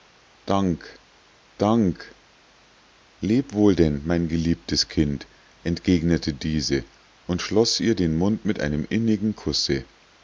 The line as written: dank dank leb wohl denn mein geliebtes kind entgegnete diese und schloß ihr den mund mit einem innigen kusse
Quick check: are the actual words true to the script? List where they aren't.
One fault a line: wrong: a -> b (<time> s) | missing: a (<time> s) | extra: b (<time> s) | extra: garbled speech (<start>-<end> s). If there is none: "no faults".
no faults